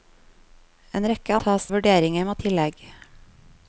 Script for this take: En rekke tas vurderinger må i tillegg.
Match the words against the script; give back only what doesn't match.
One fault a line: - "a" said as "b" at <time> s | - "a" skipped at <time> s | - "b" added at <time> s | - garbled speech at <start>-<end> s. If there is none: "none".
none